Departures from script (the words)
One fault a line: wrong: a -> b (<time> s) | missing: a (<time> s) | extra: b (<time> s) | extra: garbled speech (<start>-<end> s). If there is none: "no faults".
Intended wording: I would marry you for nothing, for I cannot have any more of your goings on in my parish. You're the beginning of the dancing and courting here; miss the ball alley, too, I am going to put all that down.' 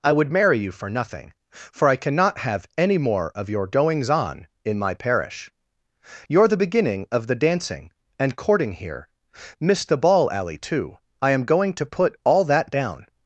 no faults